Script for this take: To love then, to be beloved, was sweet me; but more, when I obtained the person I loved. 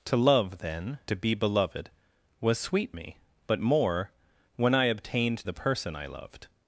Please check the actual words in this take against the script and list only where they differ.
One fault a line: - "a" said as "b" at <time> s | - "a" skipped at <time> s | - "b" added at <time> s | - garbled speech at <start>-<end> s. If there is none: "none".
none